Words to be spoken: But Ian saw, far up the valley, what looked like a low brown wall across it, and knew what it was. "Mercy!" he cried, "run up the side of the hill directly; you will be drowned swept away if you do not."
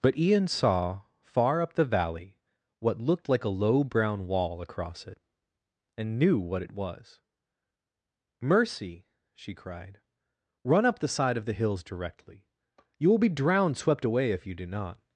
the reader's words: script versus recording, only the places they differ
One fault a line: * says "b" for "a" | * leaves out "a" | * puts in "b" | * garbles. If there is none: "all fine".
* says "she" for "he"
* says "hills" for "hill"